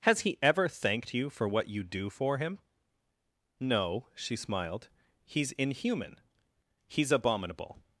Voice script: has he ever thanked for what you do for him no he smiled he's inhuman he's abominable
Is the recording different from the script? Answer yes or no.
yes